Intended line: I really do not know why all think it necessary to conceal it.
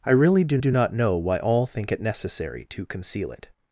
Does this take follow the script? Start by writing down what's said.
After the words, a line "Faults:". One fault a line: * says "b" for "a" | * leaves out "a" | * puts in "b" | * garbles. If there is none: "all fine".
I really do do not know why all think it necessary to conceal it.
Faults:
* puts in "do"